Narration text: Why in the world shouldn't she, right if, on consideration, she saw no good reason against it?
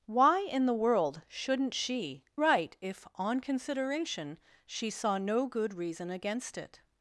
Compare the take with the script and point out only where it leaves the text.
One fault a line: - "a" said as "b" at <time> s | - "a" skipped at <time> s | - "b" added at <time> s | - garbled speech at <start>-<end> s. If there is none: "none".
none